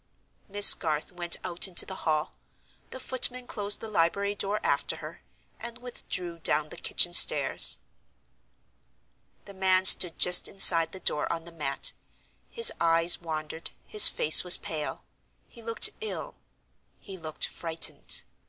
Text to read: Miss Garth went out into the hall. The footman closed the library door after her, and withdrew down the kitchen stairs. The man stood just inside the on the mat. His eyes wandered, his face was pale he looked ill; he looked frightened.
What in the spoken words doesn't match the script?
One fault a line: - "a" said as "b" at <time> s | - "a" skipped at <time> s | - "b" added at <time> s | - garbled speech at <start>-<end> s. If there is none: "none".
- "door" added at 11.0 s